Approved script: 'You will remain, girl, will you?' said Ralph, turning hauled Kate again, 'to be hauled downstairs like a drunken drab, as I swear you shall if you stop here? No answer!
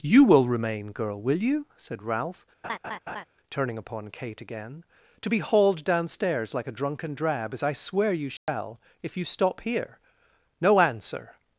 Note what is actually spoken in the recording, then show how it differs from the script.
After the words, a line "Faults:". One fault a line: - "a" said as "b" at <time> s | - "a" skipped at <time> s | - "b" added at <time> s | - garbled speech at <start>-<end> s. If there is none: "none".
'You will remain, girl, will you?' said Ralph, turning upon Kate again, 'to be hauled downstairs like a drunken drab, as I swear you shall if you stop here? No answer!
Faults:
- "hauled" said as "upon" at 3.7 s